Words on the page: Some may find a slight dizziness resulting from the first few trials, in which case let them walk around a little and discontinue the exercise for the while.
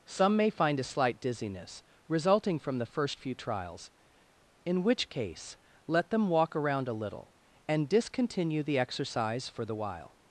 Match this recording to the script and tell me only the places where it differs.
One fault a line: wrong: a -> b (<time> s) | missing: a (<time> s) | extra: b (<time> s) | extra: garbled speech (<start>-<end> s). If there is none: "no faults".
no faults